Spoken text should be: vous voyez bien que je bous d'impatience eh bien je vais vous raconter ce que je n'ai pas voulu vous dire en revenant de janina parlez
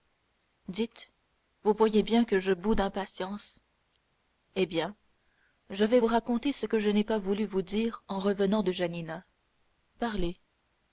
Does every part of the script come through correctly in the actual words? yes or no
yes